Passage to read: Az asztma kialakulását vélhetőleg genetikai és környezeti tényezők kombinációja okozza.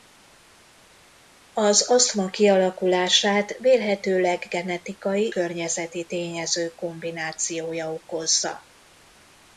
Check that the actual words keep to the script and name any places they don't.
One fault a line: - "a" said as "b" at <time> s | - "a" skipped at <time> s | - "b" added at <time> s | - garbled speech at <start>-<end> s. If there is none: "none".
- "és" skipped at 5.3 s